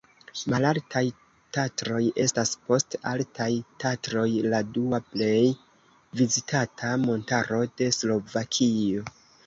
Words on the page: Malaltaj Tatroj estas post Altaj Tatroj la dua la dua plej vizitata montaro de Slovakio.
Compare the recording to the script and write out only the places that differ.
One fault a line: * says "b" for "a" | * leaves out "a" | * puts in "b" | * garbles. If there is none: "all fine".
* leaves out "la dua"